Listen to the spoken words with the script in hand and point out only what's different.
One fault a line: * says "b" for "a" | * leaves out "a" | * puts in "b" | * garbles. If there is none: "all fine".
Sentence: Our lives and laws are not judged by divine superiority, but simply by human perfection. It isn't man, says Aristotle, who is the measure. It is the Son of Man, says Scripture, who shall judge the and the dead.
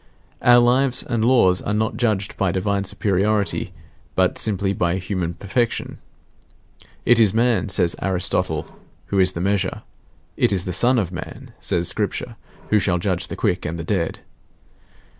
* says "is" for "isn't"
* puts in "quick"